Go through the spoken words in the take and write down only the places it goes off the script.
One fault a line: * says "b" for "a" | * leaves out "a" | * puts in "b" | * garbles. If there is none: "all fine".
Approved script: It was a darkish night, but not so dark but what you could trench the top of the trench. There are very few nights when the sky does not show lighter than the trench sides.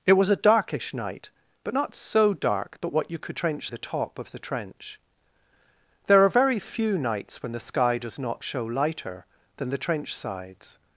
all fine